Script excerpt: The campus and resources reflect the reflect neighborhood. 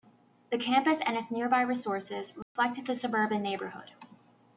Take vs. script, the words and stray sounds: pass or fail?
fail